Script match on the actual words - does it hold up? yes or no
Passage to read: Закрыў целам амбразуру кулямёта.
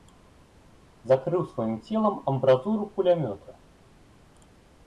no